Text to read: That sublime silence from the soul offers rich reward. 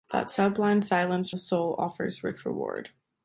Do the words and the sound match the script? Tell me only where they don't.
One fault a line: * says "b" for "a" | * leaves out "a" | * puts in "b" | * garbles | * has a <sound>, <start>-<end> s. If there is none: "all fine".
* leaves out "from"